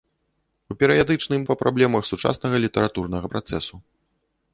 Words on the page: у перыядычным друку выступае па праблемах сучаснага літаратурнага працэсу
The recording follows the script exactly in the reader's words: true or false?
false